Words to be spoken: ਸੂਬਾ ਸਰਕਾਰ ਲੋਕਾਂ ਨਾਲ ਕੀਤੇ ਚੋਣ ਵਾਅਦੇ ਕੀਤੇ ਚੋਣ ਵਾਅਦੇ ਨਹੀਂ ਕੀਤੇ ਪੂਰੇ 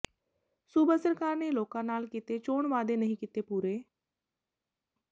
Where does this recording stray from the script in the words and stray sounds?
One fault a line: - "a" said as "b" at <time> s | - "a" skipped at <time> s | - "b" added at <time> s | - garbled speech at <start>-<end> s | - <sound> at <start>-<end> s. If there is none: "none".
- "ਨੇ" added at 1.4 s
- "ਕੀਤੇ ਚੋਣ ਵਾਅਦੇ" skipped at 3.0 s